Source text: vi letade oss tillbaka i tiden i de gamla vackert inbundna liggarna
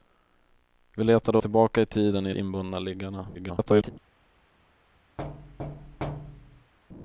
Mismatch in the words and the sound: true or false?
true